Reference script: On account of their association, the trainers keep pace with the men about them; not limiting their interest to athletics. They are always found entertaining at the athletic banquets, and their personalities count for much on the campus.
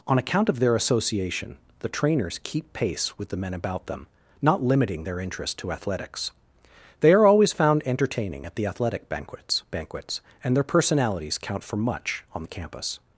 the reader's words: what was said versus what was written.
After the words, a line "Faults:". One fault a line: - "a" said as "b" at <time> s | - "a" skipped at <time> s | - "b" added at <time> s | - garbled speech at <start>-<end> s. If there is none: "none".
On account of their association, the trainers keep pace with the men about them; not limiting their interest to athletics. They are always found entertaining at the athletic banquets banquets, and their personalities count for much on the campus.
Faults:
- "banquets" added at 9.7 s